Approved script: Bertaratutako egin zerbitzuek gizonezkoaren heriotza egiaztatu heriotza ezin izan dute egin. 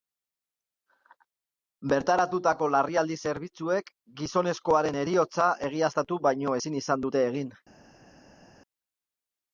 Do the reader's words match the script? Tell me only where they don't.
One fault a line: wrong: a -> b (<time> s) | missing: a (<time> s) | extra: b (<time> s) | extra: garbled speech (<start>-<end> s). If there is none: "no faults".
wrong: egin -> larrialdi (2.8 s)
wrong: heriotza -> baino (6.3 s)